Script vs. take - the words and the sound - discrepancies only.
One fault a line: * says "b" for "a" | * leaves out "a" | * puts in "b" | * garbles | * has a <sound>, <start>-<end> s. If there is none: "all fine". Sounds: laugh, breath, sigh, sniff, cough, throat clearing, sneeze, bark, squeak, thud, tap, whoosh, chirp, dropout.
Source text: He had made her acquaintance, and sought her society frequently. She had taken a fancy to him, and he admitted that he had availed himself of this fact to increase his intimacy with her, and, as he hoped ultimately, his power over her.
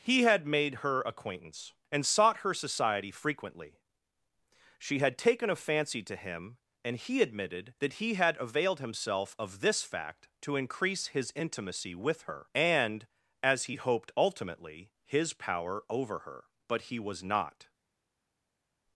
* puts in "But he was not"